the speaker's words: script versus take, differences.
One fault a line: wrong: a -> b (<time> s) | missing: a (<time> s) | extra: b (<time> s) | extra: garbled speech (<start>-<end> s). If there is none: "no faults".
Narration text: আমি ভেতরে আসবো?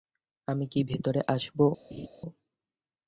extra: কি (0.7 s)